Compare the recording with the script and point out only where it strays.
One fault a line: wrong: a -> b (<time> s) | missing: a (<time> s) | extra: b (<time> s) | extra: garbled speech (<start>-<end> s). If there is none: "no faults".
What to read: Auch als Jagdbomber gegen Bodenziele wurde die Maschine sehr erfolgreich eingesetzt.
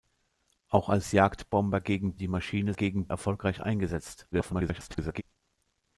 missing: Bodenziele wurde (2.1 s)
wrong: sehr -> gegen (2.7 s)
extra: garbled speech (4.3-5.2 s)